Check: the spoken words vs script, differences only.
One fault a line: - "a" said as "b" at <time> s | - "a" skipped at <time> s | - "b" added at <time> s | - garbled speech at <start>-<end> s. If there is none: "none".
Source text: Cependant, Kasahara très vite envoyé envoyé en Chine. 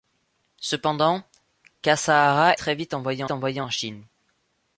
none